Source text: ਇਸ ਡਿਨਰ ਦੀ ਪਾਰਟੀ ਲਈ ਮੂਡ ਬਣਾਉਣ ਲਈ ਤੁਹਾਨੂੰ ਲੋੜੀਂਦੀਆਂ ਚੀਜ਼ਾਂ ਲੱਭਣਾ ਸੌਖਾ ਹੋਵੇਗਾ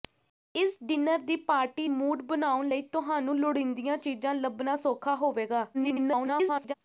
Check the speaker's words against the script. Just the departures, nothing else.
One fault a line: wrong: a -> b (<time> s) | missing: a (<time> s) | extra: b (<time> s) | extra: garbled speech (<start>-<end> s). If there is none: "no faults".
missing: ਲਈ (1.9 s)
extra: garbled speech (5.7-6.7 s)